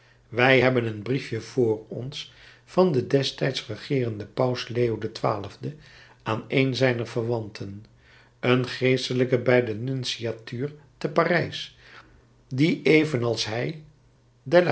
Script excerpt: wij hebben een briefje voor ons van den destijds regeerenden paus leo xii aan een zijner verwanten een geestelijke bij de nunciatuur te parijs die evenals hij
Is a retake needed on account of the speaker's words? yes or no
no